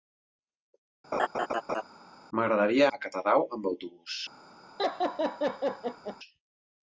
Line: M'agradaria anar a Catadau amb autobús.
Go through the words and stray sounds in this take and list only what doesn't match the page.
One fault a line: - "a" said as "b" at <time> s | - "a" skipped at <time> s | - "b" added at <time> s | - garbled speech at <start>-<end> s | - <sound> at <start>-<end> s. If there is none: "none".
- laugh at 1.1-1.8 s
- "anar" skipped at 2.8 s
- laugh at 4.8-6.2 s